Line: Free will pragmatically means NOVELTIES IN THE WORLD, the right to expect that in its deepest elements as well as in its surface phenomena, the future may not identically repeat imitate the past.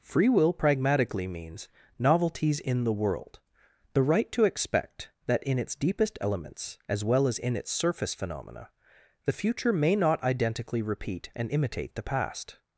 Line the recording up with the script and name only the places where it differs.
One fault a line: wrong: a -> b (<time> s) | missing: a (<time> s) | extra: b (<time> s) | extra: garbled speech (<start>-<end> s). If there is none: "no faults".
extra: and (11.3 s)